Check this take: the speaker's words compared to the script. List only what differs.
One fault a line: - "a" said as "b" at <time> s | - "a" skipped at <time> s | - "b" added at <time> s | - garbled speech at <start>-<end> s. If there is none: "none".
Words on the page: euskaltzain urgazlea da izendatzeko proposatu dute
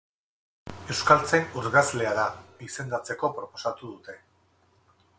none